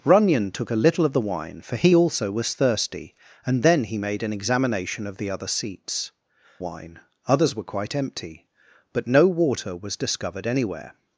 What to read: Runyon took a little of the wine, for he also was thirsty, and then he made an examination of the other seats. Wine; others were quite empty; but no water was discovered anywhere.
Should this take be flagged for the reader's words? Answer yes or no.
no